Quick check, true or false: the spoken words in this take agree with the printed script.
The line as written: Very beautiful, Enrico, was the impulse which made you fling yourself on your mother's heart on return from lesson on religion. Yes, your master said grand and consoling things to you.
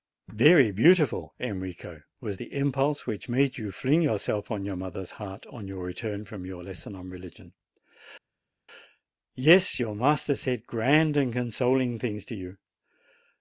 false